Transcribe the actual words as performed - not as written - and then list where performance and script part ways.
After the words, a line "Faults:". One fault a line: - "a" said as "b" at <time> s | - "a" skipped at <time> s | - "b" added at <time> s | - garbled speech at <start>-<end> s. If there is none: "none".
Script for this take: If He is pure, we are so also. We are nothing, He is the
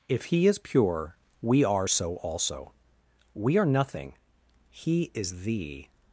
If He is pure, we are so also. We are nothing, He is the
Faults:
none